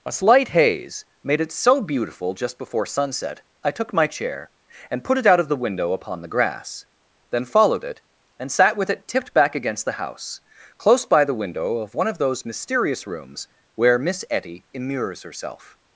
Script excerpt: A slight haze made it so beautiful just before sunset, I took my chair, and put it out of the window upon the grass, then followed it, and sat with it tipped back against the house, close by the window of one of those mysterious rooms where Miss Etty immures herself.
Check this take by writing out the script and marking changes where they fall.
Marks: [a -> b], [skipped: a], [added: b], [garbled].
A slight haze made it so beautiful just before sunset, I took my chair, and put it out of the window upon the grass, then followed it, and sat with it tipped back against the house, close by the window of one of those mysterious rooms where Miss Etty immures herself.